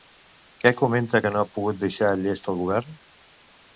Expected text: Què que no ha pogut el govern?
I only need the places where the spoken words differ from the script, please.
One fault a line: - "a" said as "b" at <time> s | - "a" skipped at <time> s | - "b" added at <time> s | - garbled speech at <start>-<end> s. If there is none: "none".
- "comenta" added at 0.8 s
- "deixar llest" added at 1.8 s